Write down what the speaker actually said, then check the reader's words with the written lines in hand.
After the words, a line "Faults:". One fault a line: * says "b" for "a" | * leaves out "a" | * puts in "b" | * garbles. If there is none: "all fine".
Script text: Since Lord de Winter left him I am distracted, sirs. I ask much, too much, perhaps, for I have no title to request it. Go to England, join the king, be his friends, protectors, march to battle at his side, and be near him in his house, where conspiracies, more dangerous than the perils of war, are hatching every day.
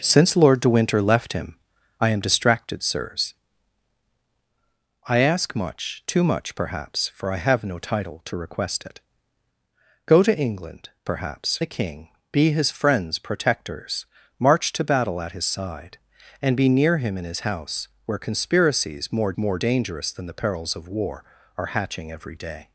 Since Lord de Winter left him I am distracted, sirs. I ask much, too much, perhaps, for I have no title to request it. Go to England, perhaps the king, be his friends, protectors, march to battle at his side, and be near him in his house, where conspiracies, more more dangerous than the perils of war, are hatching every day.
Faults:
* says "perhaps" for "join"
* puts in "more"